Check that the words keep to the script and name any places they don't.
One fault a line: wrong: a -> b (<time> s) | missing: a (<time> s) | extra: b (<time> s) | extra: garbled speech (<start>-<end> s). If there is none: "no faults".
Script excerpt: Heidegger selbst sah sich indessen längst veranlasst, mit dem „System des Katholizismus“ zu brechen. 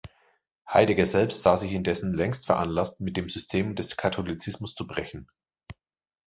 no faults